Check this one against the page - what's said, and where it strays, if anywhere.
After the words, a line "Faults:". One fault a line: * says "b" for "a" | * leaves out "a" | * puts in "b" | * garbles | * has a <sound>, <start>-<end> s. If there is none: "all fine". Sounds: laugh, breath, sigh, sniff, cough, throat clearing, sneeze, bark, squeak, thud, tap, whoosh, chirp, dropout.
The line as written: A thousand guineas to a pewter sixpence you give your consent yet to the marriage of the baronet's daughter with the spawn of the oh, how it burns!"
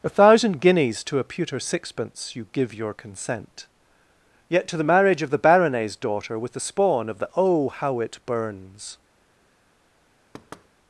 A thousand guineas to a pewter sixpence you give your consent yet to the marriage of the baronet's daughter with the spawn of the oh, how it burns!"
Faults:
* has a thud, 10.3-10.7 s